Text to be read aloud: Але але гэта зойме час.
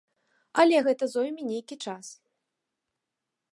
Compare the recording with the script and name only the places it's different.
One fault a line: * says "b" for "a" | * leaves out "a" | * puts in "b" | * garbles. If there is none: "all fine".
* leaves out "але"
* puts in "нейкі"